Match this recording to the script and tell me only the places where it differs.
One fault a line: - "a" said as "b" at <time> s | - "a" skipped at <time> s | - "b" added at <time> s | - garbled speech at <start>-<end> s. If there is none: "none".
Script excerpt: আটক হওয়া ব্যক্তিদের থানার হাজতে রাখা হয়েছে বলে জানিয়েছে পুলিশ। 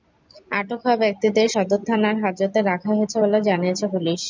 - "সদর" added at 1.5 s